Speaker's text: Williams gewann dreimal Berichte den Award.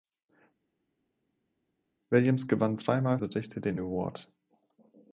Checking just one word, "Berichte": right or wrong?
right